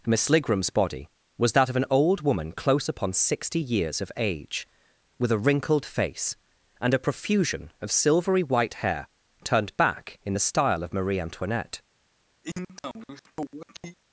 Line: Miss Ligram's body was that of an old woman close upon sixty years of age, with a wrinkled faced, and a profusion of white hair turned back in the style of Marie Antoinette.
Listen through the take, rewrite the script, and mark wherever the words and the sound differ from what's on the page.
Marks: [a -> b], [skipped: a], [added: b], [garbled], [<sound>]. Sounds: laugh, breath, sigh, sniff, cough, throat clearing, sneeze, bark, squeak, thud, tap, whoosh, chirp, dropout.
Miss Ligram's body was that of an old woman close upon sixty years of age, with a wrinkled [faced, -> face] and a profusion of [added: silvery] white hair turned back in the style of Marie Antoinette. [sniff]